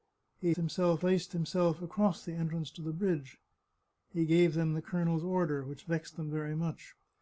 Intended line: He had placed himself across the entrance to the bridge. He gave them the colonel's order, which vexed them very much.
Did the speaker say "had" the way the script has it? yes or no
no